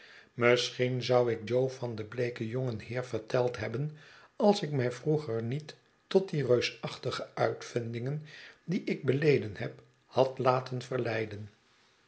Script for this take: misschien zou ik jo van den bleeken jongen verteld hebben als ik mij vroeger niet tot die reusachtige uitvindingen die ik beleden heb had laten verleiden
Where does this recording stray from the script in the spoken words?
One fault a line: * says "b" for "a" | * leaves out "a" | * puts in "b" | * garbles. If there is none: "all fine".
* puts in "heer"